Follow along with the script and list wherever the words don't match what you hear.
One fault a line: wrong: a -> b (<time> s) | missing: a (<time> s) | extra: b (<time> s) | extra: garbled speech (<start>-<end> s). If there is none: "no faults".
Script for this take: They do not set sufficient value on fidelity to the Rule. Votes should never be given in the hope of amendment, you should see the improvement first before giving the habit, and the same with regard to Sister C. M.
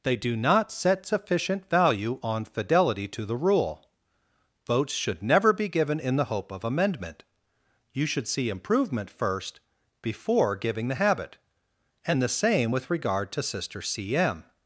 missing: the (8.5 s)